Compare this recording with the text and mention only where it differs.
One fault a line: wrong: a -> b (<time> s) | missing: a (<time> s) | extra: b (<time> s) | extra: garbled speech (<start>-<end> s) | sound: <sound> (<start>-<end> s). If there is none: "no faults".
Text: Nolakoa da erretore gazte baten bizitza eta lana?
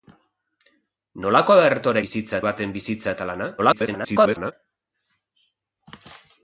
wrong: gazte -> bizitza (2.0 s)
extra: garbled speech (3.6-4.5 s)